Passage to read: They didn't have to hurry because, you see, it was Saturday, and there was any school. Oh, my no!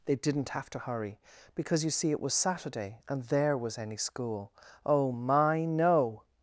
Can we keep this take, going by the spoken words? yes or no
yes